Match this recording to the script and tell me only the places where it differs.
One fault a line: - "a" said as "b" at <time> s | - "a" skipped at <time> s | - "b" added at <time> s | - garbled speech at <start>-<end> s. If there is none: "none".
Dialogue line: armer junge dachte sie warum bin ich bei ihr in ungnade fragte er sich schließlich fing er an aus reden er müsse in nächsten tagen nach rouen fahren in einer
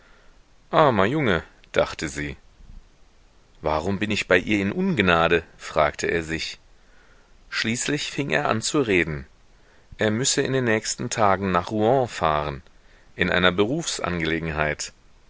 - "aus" said as "zu" at 8.6 s
- "den" added at 10.5 s